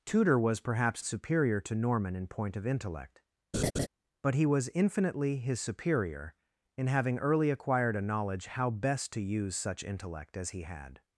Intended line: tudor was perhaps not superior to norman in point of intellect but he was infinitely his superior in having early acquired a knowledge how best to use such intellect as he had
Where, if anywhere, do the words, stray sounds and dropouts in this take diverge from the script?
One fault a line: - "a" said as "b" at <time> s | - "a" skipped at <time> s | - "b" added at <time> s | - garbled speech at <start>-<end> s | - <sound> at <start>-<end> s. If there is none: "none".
- "not" skipped at 1.0 s
- laugh at 3.5-3.9 s